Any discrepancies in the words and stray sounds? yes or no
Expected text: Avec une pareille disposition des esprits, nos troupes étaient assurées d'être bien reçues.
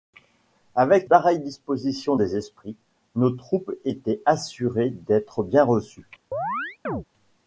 yes